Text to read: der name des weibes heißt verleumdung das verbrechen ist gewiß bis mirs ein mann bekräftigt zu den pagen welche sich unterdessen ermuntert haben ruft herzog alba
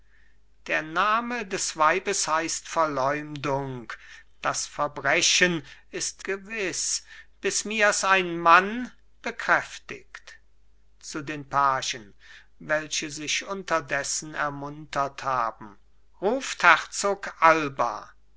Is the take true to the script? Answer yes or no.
yes